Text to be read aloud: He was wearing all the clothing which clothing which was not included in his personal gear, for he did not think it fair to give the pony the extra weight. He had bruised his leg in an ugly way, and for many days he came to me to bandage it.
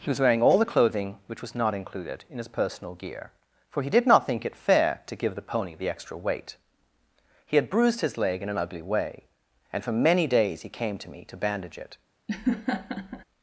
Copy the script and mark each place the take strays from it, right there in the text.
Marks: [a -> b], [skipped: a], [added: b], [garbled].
He was wearing all the clothing which [skipped: clothing which] was not included in his personal gear, for he did not think it fair to give the pony the extra weight. He had bruised his leg in an ugly way, and for many days he came to me to bandage it.